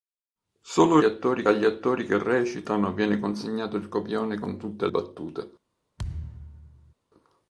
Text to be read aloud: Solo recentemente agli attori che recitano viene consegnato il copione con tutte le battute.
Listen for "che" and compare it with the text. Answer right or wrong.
right